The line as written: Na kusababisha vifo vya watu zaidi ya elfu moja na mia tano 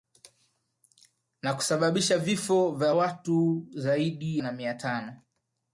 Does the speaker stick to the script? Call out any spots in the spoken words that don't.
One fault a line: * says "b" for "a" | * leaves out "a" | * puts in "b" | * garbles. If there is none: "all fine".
* leaves out "ya elfu moja"